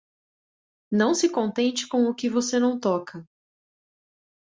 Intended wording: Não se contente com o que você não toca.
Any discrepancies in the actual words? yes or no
no